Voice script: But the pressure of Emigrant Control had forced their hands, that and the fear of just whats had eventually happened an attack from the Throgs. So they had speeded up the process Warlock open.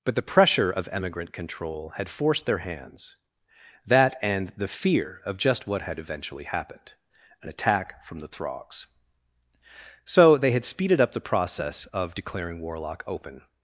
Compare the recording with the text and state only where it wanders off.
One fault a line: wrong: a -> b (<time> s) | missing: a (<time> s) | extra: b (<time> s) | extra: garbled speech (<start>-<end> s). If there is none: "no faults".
wrong: whats -> what (5.7 s)
extra: of declaring (11.9 s)